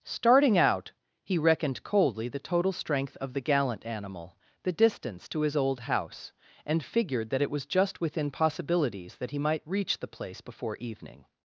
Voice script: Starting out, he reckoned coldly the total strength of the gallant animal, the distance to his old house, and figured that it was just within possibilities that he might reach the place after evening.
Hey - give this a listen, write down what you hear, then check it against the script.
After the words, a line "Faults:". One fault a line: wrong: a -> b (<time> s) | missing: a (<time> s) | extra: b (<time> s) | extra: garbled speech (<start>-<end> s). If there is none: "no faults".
Starting out, he reckoned coldly the total strength of the gallant animal, the distance to his old house, and figured that it was just within possibilities that he might reach the place before evening.
Faults:
wrong: after -> before (10.4 s)